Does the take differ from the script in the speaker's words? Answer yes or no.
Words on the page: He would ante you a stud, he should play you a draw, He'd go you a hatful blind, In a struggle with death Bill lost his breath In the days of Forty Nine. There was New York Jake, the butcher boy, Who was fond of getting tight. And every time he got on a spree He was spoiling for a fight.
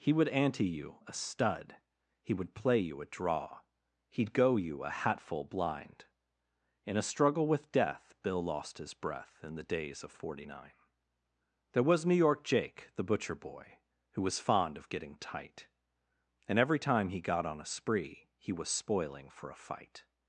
yes